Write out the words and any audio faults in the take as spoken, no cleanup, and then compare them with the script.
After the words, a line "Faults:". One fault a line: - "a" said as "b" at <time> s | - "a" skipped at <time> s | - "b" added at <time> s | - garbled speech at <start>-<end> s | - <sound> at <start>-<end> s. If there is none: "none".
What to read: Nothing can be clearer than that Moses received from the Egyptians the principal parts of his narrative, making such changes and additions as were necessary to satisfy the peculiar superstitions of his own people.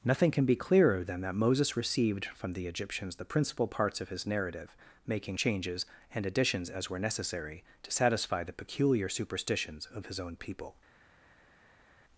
Nothing can be clearer than that Moses received from the Egyptians the principal parts of his narrative, making changes and additions as were necessary to satisfy the peculiar superstitions of his own people.
Faults:
- "such" skipped at 5.4 s